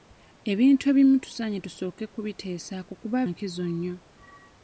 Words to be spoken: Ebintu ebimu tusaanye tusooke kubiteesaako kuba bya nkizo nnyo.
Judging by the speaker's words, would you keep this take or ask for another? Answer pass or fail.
fail